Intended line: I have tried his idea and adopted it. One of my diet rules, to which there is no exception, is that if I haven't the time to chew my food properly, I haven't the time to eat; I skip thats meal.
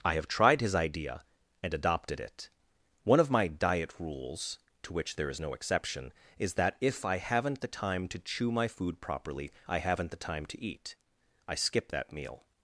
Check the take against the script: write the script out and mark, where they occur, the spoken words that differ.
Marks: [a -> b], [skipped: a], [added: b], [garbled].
I have tried his idea and adopted it. One of my diet rules, to which there is no exception, is that if I haven't the time to chew my food properly, I haven't the time to eat; I skip [thats -> that] meal.